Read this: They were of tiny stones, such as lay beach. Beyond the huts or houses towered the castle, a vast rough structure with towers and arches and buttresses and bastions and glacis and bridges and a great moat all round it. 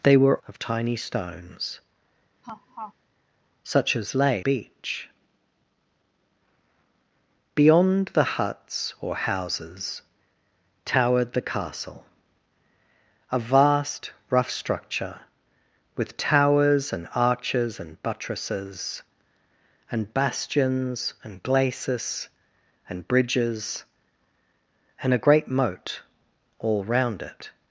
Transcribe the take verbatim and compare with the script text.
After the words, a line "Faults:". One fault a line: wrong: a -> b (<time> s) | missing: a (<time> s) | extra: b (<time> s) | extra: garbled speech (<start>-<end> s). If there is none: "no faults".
They were of tiny stones, such as lay beach. Beyond the huts or houses towered the castle, a vast rough structure with towers and arches and buttresses and bastions and glacis and bridges and a great moat all round it.
Faults:
no faults